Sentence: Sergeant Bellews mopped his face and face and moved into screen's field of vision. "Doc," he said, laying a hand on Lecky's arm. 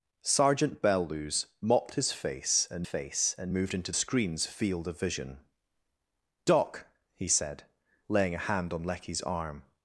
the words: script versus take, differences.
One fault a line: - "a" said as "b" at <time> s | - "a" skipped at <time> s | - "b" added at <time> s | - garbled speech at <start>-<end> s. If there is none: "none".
none